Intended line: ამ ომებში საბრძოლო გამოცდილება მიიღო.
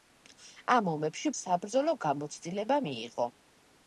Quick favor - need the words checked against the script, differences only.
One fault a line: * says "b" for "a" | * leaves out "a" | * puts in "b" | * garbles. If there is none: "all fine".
all fine